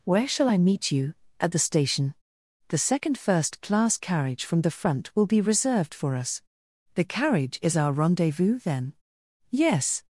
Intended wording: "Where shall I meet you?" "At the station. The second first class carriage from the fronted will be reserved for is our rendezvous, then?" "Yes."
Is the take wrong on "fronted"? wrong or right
wrong